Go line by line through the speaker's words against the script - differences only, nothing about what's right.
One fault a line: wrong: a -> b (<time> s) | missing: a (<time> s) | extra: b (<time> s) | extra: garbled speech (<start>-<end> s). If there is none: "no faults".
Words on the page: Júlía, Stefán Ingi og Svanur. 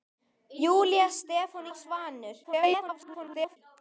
missing: Ingi (1.6 s)
extra: garbled speech (2.4-3.6 s)